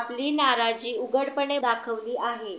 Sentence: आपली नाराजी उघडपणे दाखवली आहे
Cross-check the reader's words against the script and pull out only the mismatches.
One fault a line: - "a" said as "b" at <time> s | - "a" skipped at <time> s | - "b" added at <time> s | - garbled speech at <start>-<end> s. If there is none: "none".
none